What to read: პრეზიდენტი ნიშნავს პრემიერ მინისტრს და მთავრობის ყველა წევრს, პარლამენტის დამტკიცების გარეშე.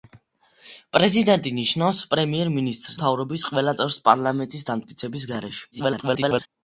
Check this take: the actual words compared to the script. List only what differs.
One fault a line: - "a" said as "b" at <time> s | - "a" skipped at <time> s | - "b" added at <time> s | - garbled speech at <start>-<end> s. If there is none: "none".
- "და" skipped at 3.0 s
- garbled speech at 5.7-6.5 s